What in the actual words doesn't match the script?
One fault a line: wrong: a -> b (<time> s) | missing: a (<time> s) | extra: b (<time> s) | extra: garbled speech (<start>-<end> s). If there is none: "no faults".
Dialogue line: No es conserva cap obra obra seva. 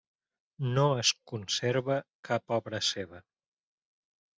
missing: obra (2.8 s)